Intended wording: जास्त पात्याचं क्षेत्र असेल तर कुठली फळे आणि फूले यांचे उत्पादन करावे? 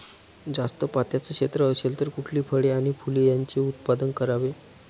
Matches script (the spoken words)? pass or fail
pass